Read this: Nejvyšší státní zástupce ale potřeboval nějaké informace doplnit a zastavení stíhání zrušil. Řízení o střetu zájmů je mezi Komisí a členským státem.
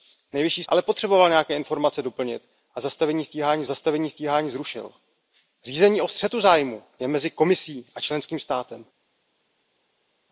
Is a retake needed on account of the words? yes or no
yes